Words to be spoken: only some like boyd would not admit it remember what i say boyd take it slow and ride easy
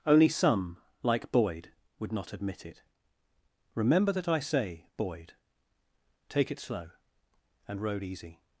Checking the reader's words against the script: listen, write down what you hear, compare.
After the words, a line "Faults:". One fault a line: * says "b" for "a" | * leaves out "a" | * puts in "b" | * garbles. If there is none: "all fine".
only some like boyd would not admit it remember that i say boyd take it slow and road easy
Faults:
* says "that" for "what"
* says "road" for "ride"